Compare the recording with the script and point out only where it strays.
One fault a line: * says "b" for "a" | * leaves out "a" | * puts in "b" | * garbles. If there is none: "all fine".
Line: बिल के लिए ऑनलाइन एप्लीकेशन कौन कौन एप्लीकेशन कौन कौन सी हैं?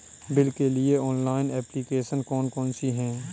* leaves out "एप्लीकेशन कौन कौन"